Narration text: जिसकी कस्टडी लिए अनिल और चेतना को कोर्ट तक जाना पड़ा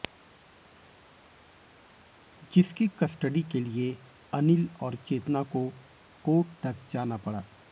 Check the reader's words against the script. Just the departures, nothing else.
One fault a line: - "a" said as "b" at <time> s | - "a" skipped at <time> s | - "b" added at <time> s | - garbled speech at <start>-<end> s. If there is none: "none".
- "के" added at 3.4 s